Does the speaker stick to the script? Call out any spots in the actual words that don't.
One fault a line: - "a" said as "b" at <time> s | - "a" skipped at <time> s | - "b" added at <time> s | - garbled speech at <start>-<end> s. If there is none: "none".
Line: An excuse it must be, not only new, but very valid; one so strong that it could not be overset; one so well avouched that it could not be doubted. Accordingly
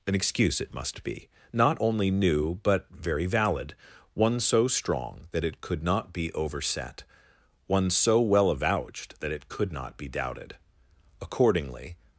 none